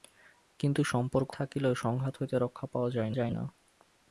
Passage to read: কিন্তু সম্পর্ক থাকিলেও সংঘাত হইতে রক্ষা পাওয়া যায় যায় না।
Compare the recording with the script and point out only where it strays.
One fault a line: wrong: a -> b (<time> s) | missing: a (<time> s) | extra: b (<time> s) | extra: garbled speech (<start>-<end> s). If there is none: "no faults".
no faults